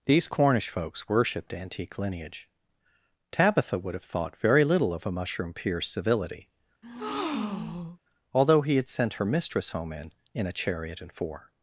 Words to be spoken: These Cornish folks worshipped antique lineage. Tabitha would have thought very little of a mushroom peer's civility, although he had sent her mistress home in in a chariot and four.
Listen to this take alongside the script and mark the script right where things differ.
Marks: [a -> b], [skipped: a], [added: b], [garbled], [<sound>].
These Cornish folks worshipped antique lineage. Tabitha would have thought very little of a mushroom peer's civility, [breath] although he had sent her mistress home in in a chariot and four.